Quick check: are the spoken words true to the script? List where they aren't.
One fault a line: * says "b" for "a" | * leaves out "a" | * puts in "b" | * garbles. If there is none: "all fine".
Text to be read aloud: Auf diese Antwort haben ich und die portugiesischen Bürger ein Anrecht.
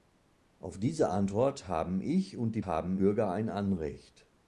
* says "haben" for "portugiesischen"